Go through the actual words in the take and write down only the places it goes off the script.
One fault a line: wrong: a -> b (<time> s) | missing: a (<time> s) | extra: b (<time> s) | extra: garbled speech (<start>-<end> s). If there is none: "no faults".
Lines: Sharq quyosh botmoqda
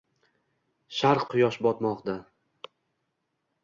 no faults